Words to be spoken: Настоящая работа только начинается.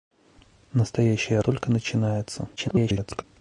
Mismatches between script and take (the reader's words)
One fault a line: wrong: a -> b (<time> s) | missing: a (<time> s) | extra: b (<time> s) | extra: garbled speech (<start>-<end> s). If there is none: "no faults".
missing: работа (1.4 s)
extra: garbled speech (2.6-3.2 s)